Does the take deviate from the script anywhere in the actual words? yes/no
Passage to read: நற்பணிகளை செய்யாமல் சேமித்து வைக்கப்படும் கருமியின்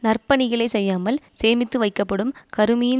no